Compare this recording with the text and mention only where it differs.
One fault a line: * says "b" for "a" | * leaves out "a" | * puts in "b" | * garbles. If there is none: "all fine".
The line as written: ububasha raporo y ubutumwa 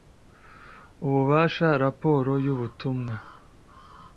all fine